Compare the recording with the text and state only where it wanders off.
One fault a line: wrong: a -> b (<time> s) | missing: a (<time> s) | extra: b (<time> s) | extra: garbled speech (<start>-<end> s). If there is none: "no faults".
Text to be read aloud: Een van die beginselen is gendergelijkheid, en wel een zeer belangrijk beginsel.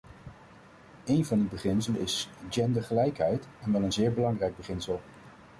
no faults